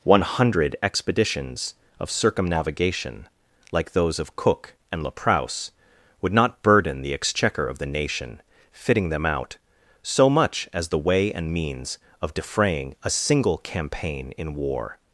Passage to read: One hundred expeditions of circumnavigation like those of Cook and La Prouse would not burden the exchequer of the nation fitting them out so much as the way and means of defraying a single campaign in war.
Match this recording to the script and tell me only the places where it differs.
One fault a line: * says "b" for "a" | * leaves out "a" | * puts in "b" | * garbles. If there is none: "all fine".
all fine